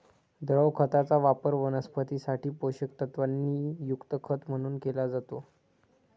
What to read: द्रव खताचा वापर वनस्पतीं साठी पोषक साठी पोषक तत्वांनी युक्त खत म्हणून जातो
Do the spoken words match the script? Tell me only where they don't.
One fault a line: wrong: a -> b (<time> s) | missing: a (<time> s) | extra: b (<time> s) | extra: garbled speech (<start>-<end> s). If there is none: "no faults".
missing: साठी पोषक (3.0 s)
extra: केला (4.8 s)